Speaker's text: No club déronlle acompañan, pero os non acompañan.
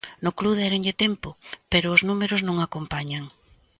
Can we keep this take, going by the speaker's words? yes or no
no